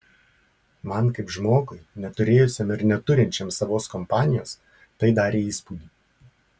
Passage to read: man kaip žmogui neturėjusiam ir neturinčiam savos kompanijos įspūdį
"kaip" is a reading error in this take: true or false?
false